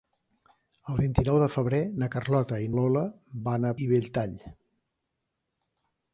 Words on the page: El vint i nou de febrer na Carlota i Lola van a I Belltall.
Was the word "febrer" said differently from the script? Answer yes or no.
no